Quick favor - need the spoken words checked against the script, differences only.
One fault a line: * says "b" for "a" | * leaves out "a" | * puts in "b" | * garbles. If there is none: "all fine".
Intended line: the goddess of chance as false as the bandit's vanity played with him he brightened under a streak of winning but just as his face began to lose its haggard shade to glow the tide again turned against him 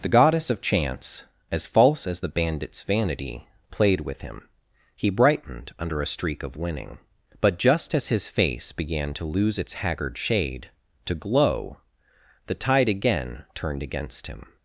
all fine